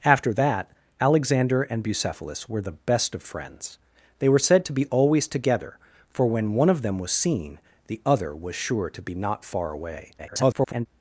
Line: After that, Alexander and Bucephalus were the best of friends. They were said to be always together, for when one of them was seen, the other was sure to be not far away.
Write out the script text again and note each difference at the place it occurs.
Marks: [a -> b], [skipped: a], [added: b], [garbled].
After that, Alexander and Bucephalus were the best of friends. They were said to be always together, for when one of them was seen, the other was sure to be not far away. [garbled]